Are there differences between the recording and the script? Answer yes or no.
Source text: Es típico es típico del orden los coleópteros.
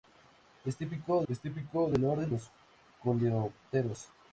no